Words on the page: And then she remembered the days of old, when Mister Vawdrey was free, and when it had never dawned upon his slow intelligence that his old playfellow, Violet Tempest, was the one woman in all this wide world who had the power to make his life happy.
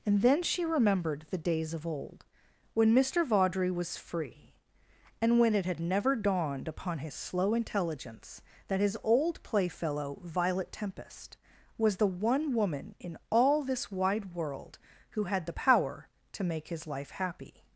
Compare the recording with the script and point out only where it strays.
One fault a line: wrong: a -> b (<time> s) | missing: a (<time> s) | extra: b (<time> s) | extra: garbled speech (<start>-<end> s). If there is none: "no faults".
no faults